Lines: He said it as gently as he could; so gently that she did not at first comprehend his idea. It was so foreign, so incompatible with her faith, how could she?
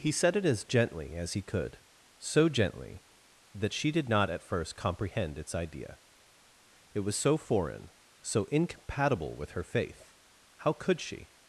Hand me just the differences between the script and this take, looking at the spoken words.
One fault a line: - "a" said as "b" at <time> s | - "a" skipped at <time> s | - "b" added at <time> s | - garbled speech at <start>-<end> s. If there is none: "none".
- "his" said as "its" at 5.4 s